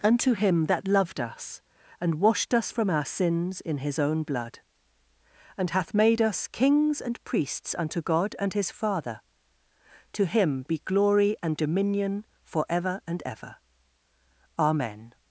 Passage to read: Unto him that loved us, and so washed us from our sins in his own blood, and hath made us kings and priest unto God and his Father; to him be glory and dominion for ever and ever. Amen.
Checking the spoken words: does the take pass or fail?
fail